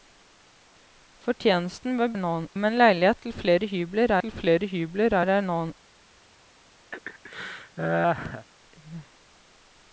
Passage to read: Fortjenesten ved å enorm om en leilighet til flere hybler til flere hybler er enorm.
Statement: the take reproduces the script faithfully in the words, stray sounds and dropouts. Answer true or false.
false